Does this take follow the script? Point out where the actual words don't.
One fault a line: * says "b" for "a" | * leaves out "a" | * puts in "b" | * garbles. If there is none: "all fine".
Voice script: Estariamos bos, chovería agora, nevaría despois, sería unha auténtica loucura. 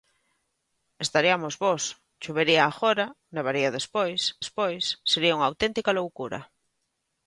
* puts in "despois"